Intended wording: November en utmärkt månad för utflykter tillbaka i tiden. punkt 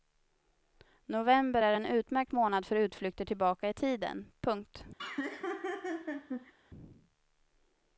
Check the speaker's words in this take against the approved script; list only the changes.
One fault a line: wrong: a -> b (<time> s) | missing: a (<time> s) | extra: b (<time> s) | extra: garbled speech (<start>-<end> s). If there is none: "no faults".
extra: är (1.6 s)